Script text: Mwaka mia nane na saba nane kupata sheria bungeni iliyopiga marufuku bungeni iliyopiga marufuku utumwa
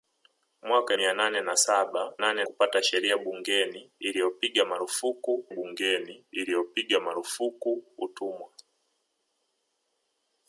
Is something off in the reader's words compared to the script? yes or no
no